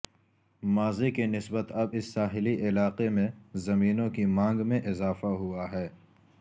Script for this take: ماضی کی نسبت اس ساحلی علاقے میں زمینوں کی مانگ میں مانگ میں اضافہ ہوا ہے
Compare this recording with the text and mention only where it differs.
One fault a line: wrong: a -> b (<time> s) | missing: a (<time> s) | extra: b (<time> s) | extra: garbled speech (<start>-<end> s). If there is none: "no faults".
extra: اب (1.7 s)
missing: مانگ میں (4.8 s)